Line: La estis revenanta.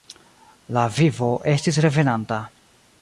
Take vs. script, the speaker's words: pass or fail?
fail